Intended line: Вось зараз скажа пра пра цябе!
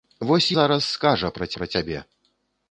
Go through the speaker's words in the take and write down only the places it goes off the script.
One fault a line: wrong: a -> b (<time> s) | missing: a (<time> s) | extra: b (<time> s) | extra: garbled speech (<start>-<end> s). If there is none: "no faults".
no faults